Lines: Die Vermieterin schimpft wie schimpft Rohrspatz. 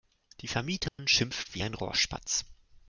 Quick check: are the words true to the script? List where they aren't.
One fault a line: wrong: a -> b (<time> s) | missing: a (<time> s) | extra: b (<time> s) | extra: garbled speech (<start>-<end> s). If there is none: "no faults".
wrong: schimpft -> ein (1.6 s)